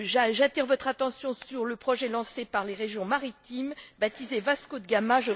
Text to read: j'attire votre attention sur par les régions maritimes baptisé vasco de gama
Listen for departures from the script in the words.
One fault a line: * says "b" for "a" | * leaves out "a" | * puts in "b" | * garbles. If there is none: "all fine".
* puts in "le projet lancé"